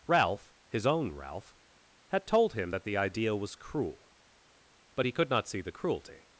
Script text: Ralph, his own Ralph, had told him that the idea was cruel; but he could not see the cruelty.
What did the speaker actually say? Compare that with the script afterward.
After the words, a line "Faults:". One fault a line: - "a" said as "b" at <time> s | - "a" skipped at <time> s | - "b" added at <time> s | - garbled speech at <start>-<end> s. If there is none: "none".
Ralph, his own Ralph, had told him that the idea was cruel; but he could not see the cruelty.
Faults:
none